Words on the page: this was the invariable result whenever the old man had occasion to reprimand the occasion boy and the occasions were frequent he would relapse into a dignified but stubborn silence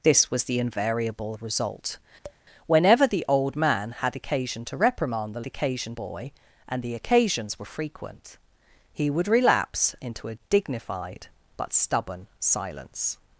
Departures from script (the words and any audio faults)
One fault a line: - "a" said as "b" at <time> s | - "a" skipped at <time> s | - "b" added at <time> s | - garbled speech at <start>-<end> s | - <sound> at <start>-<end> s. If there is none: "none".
- tap at 2.2-2.4 s